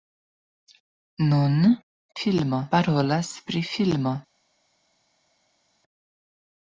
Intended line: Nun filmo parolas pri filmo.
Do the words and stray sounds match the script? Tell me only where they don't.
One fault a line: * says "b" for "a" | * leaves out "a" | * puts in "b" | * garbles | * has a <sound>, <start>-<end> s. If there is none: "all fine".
all fine